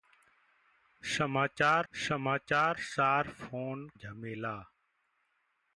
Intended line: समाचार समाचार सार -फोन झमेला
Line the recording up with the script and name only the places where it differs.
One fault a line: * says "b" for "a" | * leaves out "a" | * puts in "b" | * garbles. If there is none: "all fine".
all fine